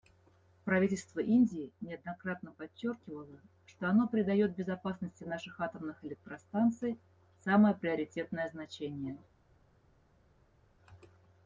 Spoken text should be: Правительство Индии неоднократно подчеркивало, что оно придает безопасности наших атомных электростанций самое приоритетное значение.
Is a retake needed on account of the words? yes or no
no